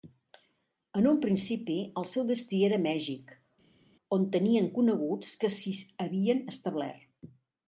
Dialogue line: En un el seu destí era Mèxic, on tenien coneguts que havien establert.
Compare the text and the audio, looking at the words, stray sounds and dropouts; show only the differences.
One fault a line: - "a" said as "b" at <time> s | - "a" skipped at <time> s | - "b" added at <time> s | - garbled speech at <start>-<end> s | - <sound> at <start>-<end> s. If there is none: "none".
- "principi" added at 1.2 s
- "s'hi" added at 5.6 s